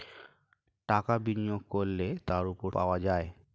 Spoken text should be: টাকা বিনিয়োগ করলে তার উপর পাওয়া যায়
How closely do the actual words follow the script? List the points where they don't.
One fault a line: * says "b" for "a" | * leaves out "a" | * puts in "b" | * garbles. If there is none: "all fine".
all fine